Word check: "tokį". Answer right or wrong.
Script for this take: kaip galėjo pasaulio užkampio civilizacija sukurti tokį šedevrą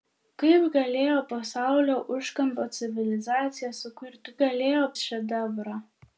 wrong